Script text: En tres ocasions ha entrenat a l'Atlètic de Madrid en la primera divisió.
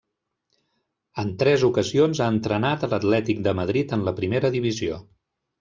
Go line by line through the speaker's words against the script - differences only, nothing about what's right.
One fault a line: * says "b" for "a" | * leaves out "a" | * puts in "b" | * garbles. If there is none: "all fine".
all fine